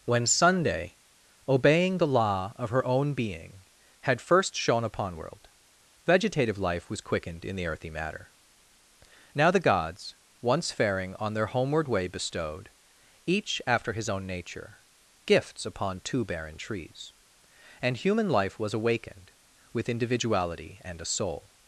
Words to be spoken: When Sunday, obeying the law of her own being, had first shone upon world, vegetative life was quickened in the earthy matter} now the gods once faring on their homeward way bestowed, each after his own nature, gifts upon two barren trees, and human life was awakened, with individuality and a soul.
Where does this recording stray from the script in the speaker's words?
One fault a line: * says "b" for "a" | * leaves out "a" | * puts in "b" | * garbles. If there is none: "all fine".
all fine